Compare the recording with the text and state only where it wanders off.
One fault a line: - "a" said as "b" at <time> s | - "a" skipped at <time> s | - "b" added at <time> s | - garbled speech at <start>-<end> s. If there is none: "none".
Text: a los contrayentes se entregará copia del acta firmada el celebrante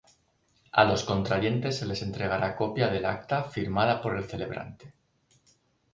- "les" added at 1.9 s
- "por" added at 4.0 s